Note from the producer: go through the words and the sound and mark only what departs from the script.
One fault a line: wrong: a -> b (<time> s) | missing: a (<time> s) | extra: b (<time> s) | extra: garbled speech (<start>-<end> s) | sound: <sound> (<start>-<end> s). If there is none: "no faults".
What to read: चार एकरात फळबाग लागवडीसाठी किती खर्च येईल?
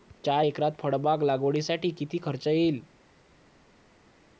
no faults